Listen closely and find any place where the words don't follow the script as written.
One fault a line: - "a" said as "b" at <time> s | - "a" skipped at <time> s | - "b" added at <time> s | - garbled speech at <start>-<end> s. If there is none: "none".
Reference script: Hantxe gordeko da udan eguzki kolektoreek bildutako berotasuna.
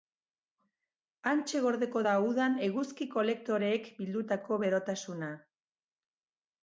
none